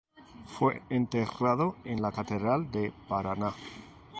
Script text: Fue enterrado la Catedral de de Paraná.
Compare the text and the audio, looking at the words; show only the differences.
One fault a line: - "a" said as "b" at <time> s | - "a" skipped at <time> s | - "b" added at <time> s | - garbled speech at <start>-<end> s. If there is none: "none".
- "en" added at 1.9 s
- "de" skipped at 2.9 s